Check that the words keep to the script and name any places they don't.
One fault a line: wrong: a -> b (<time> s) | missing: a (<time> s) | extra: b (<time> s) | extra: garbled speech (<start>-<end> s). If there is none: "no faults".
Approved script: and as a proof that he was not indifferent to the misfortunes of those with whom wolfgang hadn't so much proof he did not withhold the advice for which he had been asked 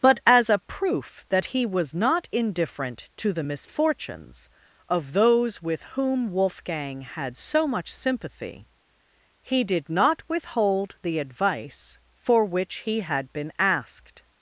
wrong: and -> but (0.0 s)
wrong: hadn't -> had (7.0 s)
wrong: proof -> sympathy (7.9 s)